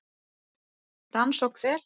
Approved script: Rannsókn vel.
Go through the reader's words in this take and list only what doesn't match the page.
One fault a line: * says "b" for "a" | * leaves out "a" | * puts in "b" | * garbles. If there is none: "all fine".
all fine